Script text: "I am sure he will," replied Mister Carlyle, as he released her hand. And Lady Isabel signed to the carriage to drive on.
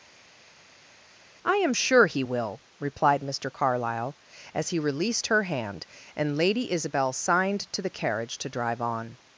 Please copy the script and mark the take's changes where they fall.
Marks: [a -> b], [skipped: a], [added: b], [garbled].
"I am sure he will," replied Mister Carlyle, as he released her hand. And Lady Isabel signed to the carriage to drive on.